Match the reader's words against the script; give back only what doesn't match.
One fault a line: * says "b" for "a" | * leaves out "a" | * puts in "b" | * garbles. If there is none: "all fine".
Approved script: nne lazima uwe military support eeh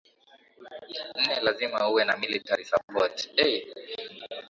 * puts in "na"